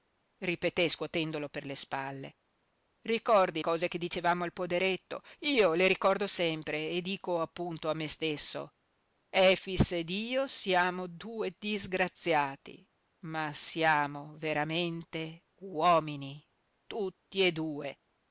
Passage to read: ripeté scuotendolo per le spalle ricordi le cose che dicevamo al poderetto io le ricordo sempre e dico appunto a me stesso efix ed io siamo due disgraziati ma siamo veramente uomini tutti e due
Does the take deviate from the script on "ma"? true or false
false